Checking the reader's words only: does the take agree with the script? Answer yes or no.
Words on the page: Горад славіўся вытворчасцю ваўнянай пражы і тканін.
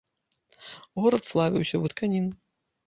no